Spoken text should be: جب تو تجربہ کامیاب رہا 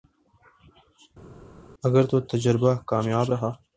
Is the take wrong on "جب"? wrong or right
wrong